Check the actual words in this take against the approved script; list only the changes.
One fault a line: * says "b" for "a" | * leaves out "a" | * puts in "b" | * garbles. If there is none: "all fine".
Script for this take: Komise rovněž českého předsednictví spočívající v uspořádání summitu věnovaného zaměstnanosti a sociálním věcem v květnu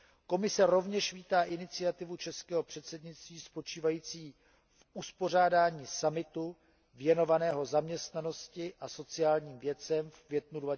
* puts in "vítá iniciativu"